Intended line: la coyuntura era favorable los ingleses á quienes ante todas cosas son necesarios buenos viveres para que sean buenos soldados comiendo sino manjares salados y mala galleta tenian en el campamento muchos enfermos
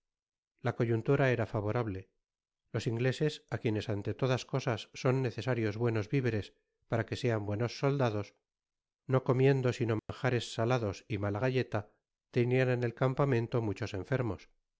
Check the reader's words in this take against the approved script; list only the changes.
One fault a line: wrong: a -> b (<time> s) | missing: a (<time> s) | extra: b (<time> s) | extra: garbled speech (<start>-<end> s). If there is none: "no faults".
extra: no (9.1 s)